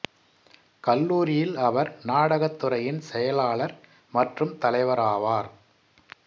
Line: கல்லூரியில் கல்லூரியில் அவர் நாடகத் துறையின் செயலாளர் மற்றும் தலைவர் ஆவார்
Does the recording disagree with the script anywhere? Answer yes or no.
yes